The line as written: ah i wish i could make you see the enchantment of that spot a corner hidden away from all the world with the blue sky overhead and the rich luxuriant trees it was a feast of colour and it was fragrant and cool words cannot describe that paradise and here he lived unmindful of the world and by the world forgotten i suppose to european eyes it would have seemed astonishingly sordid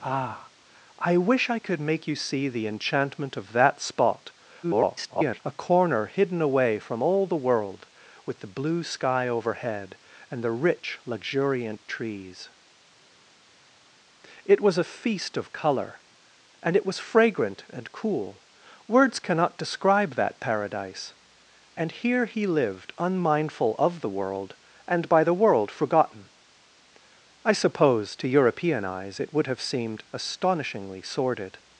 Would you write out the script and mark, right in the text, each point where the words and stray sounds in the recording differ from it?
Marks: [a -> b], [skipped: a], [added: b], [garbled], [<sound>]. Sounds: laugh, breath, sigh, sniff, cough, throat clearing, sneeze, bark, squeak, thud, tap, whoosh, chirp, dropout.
ah i wish i could make you see the enchantment of that spot [garbled] a corner hidden away from all the world with the blue sky overhead and the rich luxuriant trees it was a feast of colour and it was fragrant and cool words cannot describe that paradise and here he lived unmindful of the world and by the world forgotten i suppose to european eyes it would have seemed astonishingly sordid